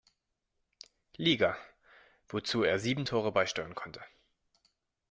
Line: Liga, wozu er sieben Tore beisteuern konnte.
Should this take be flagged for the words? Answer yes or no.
no